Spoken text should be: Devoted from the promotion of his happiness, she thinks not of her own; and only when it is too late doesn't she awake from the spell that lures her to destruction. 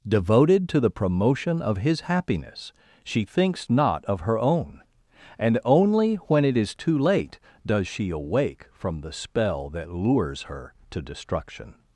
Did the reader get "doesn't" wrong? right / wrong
wrong